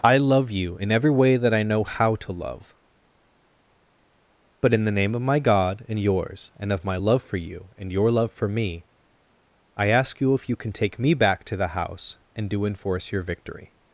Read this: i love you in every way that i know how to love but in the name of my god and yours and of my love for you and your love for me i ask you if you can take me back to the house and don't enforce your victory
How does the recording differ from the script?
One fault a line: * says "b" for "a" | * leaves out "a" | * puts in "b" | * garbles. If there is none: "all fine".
* says "do" for "don't"